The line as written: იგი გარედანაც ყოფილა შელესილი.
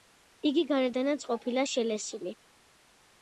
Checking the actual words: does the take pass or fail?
pass